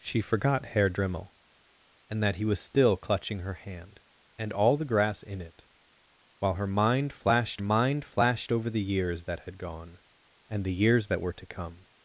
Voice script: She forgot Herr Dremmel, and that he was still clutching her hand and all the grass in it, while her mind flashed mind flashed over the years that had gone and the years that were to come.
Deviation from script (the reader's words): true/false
false